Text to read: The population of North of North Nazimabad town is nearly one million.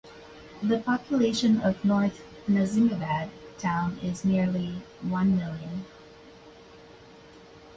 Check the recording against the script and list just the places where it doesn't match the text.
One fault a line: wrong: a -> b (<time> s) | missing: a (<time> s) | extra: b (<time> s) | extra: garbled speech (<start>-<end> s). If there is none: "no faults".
missing: of North (2.2 s)